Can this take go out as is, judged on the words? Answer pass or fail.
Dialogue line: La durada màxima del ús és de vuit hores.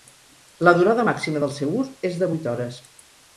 fail